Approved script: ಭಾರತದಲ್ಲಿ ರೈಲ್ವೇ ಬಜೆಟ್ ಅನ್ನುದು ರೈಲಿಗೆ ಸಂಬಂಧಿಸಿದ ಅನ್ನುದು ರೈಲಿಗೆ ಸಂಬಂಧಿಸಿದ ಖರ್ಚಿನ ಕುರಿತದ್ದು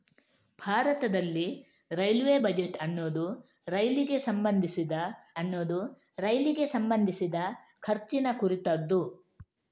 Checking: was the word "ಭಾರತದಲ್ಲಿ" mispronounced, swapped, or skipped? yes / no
no